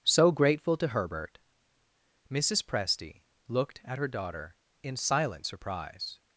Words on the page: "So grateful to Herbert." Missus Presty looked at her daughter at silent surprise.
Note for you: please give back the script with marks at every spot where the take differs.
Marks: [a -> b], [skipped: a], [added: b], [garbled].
"So grateful to Herbert." Missus Presty looked at her daughter [at -> in] silent surprise.